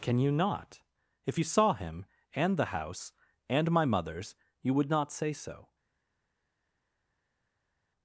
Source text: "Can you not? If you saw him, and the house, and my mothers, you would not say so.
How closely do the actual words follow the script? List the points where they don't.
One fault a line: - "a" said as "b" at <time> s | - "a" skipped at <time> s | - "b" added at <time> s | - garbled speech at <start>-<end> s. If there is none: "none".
none